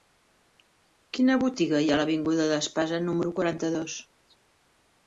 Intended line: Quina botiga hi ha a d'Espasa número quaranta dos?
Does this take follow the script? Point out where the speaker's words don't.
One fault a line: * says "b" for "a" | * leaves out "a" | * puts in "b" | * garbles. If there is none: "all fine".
* puts in "l'avinguda"